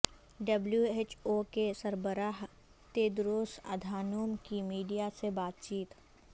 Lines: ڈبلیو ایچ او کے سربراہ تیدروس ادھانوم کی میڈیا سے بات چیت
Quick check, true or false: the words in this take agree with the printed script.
true